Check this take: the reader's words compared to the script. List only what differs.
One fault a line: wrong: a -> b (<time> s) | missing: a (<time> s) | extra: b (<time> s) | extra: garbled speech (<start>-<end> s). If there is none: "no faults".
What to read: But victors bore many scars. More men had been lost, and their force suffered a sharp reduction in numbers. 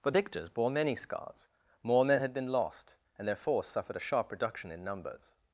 no faults